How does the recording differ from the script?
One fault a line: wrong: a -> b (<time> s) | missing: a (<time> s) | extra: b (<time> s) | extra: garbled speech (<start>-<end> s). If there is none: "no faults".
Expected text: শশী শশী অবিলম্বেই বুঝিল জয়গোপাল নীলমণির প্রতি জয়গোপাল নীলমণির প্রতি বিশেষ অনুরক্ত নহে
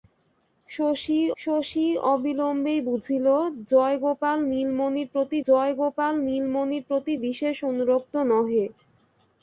no faults